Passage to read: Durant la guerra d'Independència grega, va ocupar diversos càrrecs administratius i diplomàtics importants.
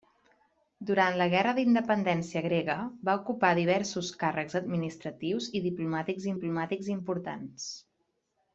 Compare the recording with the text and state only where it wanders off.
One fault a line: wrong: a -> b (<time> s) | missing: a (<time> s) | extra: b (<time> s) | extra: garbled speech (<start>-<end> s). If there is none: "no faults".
extra: diplomàtics (6.4 s)